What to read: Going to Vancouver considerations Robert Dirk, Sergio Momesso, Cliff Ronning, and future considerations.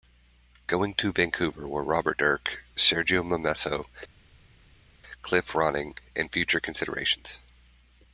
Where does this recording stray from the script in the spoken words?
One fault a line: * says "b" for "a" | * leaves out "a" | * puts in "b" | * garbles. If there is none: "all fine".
* says "were" for "considerations"